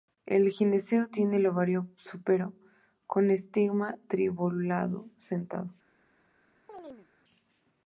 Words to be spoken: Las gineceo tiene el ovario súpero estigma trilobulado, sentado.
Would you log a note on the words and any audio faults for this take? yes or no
yes